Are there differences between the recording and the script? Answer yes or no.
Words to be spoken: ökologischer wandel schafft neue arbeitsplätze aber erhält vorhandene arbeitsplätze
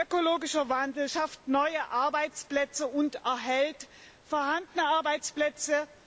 yes